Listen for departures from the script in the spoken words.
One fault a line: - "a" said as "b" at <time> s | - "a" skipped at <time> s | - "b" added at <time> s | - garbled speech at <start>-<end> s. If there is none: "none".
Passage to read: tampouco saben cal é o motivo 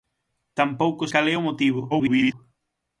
- "saben" skipped at 1.0 s
- garbled speech at 1.9-2.3 s